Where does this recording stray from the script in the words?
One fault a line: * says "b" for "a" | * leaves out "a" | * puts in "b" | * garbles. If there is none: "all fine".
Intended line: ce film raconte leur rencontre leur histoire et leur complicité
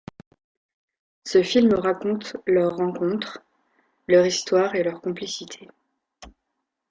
all fine